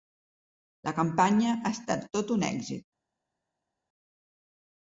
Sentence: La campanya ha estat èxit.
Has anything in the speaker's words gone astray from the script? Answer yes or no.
yes